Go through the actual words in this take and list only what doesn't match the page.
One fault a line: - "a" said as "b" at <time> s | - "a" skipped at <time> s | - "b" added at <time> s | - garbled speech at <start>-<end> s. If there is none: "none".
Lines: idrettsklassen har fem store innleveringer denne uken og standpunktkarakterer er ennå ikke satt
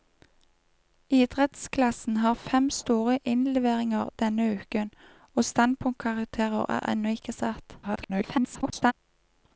- garbled speech at 7.8-8.9 s